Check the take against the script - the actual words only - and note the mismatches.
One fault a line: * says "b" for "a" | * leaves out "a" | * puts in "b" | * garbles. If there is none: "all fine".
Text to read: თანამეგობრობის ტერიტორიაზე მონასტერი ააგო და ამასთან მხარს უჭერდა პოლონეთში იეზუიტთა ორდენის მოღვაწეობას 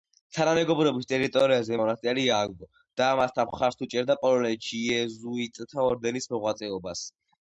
all fine